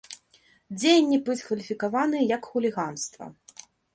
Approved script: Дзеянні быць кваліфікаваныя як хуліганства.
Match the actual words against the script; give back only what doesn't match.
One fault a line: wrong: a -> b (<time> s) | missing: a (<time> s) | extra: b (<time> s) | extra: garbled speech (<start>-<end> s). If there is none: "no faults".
no faults